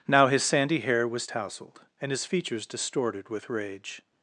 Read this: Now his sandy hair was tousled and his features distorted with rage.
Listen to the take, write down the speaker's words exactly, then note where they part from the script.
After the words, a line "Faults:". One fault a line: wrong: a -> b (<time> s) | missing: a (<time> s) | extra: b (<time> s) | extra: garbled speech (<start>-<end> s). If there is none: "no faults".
Now his sandy hair was tousled and his features distorted with rage.
Faults:
no faults